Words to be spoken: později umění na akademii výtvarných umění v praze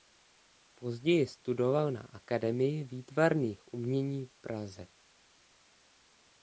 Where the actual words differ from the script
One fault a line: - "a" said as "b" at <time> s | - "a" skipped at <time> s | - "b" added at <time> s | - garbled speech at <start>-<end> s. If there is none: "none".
- "umění" said as "studoval" at 1.3 s